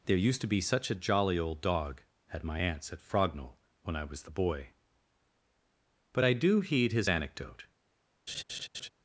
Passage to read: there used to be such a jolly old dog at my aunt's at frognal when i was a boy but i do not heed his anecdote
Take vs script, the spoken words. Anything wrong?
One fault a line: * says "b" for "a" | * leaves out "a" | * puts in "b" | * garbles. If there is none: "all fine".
* says "the" for "a"
* leaves out "not"